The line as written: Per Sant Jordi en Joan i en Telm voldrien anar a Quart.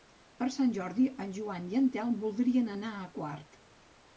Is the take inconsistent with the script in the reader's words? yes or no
no